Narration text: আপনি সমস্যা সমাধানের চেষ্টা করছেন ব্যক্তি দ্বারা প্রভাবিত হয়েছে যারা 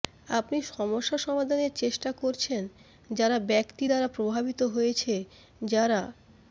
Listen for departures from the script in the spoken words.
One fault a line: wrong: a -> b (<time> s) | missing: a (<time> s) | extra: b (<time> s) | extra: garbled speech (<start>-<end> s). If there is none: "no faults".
extra: যারা (3.1 s)